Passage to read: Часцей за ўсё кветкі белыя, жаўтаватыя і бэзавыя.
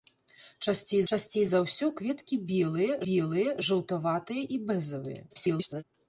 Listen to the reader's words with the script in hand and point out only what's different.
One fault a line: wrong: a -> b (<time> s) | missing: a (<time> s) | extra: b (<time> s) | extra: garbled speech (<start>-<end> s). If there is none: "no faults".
extra: часцей (1.1 s)
extra: белыя (3.1 s)
extra: garbled speech (5.3-5.8 s)